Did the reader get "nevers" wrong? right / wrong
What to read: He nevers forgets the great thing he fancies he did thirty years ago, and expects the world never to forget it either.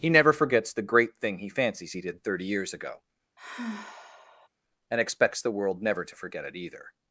wrong